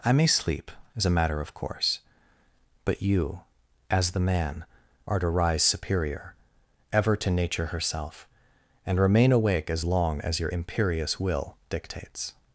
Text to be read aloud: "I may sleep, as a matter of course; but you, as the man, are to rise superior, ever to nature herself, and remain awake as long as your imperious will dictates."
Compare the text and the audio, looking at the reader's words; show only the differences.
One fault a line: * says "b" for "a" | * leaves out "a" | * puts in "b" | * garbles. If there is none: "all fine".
all fine